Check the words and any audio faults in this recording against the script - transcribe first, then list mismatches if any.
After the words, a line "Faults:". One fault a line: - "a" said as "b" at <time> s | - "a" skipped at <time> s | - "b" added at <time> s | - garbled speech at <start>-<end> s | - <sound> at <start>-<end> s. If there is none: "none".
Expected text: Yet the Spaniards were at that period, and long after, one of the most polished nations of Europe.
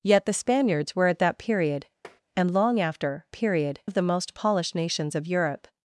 Yet the Spaniards were at that period, and long after, period of the most polished nations of Europe.
Faults:
- tap at 2.0-2.2 s
- "one" said as "period" at 3.3 s